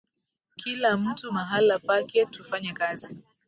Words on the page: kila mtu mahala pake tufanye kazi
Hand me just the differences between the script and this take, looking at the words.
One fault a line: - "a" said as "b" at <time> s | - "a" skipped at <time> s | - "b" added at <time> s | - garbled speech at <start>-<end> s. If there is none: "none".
none